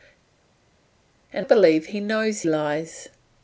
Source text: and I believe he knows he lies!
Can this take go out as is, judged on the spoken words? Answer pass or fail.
fail